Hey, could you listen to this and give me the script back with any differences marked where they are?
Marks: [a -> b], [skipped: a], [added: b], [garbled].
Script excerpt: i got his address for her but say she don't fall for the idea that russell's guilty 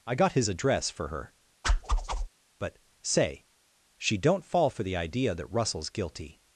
i got his address for her but say she don't fall for the idea that russell's guilty